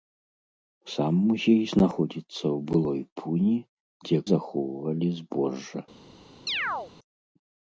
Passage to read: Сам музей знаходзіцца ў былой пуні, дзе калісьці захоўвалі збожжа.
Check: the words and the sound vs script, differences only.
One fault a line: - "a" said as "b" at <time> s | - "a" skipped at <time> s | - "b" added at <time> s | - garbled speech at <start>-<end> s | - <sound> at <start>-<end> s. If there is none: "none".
- "калісьці" skipped at 4.2 s
- chirp at 6.5-6.9 s